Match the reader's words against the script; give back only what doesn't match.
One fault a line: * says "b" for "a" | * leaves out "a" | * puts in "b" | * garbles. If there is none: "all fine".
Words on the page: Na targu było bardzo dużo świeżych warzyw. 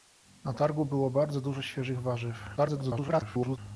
* garbles